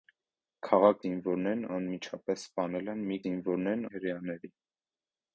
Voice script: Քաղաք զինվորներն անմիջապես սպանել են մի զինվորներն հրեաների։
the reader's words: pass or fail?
pass